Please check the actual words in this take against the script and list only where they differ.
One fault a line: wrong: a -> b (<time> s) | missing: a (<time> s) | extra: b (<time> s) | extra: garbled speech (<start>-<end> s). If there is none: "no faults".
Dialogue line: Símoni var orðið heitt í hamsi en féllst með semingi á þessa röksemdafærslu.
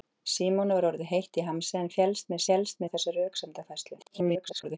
wrong: semingi -> féllst (2.5 s)
extra: garbled speech (4.0-4.8 s)